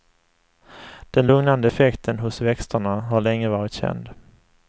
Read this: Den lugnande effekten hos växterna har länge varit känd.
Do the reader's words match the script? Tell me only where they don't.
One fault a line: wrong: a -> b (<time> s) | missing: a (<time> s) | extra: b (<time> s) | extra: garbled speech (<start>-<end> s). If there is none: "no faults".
no faults